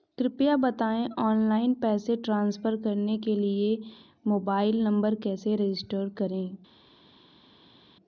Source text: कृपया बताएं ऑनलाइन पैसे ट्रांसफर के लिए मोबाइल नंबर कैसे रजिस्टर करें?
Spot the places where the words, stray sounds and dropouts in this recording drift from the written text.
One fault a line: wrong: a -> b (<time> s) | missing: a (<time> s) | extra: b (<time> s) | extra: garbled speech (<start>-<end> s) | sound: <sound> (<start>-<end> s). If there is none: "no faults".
extra: करने (2.8 s)